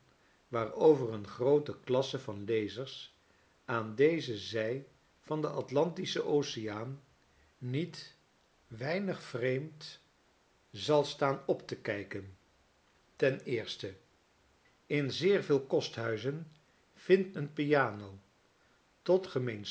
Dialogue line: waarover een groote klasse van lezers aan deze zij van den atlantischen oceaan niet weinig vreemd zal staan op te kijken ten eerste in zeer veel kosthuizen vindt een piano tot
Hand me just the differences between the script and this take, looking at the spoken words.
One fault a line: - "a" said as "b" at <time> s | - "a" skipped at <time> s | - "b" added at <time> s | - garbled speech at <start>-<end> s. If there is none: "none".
none